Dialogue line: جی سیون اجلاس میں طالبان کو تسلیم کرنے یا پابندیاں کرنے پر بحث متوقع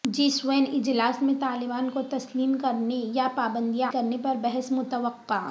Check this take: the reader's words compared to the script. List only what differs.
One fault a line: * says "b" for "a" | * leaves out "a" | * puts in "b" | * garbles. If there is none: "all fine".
all fine